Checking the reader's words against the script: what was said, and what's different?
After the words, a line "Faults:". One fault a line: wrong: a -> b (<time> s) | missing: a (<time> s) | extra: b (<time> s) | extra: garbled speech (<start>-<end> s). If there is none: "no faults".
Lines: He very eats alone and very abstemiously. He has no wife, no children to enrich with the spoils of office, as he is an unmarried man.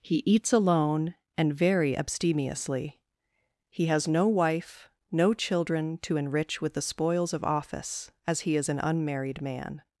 He eats alone and very abstemiously. He has no wife, no children to enrich with the spoils of office, as he is an unmarried man.
Faults:
missing: very (0.2 s)